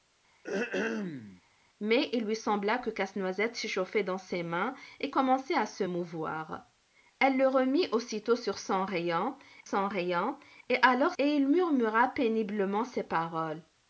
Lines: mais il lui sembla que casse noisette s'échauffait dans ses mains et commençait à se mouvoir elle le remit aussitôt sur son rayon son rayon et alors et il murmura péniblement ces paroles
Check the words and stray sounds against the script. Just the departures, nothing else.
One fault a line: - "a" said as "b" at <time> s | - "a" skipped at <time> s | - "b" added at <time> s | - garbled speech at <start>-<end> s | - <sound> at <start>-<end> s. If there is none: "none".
- throat clearing at 0.4-1.4 s